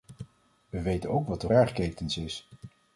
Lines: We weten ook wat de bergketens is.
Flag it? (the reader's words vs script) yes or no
no